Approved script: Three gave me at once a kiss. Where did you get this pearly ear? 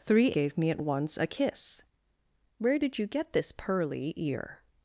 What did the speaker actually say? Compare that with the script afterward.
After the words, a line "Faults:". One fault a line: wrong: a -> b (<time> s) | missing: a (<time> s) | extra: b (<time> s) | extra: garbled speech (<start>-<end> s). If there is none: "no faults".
Three gave me at once a kiss. Where did you get this pearly ear?
Faults:
no faults